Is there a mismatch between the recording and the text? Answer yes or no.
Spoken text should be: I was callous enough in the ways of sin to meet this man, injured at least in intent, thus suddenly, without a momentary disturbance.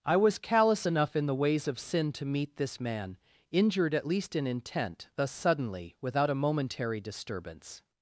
no